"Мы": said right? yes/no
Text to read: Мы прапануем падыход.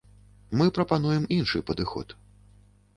yes